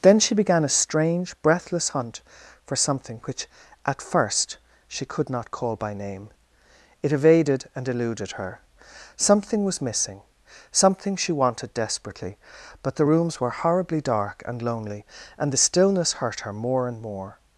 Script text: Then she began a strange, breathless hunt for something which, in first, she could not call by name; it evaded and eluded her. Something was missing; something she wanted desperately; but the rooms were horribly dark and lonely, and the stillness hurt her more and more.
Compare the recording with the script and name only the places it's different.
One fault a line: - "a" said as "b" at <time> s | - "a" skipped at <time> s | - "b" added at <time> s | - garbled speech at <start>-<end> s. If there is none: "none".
- "in" said as "at" at 3.9 s